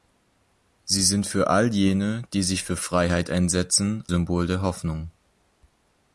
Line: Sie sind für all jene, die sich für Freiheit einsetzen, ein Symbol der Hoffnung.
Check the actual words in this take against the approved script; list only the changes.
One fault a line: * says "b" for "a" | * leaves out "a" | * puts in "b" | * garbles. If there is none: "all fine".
* leaves out "ein"